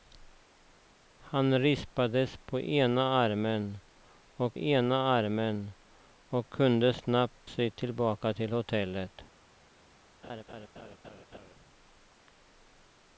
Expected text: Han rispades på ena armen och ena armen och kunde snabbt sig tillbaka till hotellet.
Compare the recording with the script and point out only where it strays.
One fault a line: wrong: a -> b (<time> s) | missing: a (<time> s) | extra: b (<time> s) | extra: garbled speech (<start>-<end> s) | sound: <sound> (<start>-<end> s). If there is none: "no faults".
sound: laugh (10.2-11.5 s)